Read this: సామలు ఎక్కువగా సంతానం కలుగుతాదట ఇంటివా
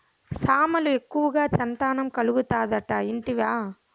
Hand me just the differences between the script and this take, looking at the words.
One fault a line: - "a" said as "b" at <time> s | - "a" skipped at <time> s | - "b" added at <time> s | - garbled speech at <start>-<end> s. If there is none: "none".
none